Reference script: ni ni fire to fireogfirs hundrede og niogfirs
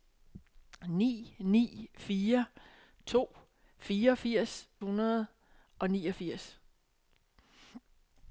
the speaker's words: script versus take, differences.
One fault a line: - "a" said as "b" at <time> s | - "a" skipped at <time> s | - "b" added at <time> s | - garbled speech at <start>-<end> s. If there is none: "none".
none